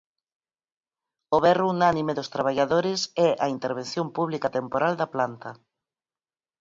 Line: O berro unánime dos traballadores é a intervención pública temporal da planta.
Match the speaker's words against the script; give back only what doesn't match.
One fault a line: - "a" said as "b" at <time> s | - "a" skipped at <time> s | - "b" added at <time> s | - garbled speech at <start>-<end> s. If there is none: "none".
none